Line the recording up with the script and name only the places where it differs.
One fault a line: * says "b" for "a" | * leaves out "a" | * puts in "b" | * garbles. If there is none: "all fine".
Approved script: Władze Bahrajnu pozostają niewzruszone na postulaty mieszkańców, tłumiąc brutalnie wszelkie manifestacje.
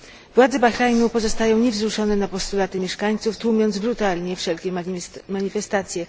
all fine